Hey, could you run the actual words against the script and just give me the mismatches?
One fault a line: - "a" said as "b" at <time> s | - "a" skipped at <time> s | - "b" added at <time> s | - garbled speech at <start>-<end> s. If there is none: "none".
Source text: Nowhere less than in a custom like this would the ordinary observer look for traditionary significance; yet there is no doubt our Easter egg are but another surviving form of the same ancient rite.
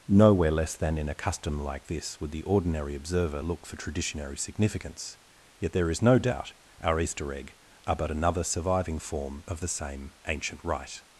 none